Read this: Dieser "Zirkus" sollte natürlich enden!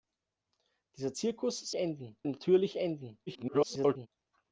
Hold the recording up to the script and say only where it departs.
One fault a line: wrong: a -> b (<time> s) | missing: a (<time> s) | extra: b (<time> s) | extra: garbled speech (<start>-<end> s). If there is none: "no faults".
wrong: sollte -> enden (1.8 s)
extra: garbled speech (3.3-4.1 s)